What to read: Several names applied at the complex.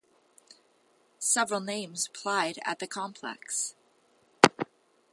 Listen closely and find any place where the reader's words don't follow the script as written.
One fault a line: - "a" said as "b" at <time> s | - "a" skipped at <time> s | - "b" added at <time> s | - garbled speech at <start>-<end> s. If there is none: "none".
none